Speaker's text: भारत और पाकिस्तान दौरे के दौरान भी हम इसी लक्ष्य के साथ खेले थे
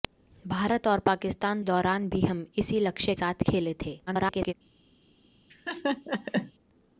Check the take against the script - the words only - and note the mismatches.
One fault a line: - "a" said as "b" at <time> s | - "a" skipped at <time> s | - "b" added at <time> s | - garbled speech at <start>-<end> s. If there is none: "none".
- "दौरे के" skipped at 1.6 s
- "के" skipped at 3.1 s
- garbled speech at 4.1-4.5 s